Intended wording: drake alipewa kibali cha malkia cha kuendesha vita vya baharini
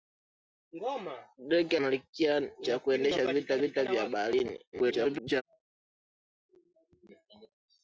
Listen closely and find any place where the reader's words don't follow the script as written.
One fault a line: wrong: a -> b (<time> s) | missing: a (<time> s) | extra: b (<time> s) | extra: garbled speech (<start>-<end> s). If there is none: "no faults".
missing: alipewa kibali cha (1.8 s)
extra: vita (3.6 s)
extra: garbled speech (4.7-5.4 s)